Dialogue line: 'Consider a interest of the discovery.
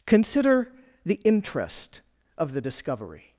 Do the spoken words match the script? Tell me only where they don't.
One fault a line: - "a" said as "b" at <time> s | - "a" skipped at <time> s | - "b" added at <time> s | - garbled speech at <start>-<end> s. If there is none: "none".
- "a" said as "the" at 1.1 s